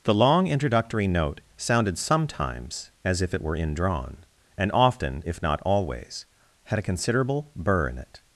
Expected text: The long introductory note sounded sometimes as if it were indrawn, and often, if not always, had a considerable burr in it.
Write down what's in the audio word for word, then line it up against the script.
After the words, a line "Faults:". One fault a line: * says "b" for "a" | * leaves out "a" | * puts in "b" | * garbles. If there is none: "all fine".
The long introductory note sounded sometimes as if it were indrawn, and often, if not always, had a considerable burr in it.
Faults:
all fine